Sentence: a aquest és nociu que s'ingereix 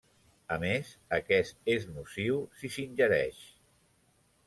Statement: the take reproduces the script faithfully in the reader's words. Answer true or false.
false